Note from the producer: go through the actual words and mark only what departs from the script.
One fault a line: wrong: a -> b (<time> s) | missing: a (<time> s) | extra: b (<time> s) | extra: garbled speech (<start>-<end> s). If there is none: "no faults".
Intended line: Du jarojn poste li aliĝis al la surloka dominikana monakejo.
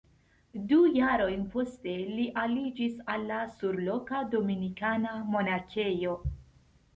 no faults